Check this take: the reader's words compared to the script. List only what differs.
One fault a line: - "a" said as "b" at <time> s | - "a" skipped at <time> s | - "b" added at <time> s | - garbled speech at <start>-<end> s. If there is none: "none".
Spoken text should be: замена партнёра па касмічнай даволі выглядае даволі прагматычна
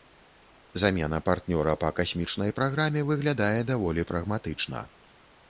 - "даволі" said as "праграме" at 2.6 s